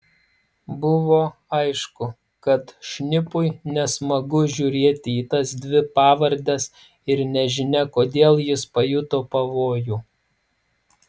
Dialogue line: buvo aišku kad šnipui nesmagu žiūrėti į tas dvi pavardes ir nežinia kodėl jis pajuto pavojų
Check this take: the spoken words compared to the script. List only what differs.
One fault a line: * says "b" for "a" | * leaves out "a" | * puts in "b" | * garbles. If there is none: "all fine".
all fine